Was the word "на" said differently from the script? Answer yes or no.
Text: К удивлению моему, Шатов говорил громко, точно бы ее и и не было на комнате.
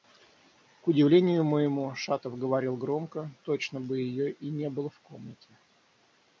yes